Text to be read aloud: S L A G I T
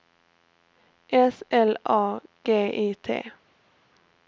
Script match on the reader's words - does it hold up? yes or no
yes